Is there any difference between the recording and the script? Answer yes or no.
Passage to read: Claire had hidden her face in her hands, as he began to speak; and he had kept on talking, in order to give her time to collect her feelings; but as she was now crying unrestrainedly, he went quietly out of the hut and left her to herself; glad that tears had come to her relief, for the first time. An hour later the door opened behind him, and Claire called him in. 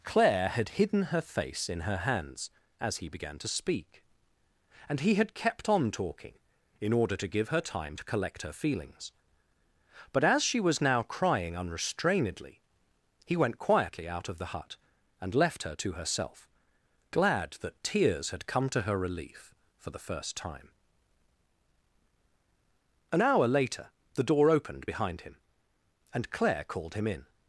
no